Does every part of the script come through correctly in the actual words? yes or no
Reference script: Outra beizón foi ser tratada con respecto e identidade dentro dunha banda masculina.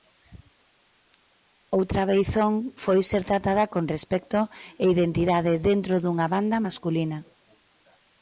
yes